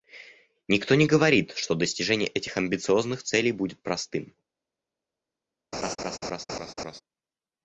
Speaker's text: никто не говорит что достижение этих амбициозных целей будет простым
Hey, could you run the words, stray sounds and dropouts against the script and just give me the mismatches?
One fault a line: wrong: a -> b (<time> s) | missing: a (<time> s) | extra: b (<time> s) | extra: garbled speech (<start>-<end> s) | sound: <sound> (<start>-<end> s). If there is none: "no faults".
sound: laugh (5.7-7.0 s)